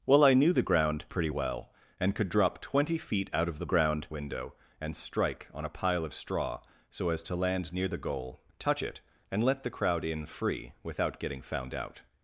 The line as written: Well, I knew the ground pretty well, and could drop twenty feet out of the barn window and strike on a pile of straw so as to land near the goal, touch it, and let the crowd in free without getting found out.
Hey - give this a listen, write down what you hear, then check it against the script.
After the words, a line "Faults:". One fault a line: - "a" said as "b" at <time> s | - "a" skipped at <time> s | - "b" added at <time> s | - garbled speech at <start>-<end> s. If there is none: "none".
Well, I knew the ground pretty well, and could drop twenty feet out of the ground window and strike on a pile of straw so as to land near the goal, touch it, and let the crowd in free without getting found out.
Faults:
- "barn" said as "ground" at 3.7 s